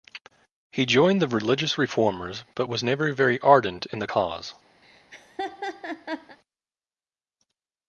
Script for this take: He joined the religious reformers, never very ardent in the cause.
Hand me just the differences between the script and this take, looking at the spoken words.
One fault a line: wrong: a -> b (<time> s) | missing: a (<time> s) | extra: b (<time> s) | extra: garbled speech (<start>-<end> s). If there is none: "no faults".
extra: but was (2.5 s)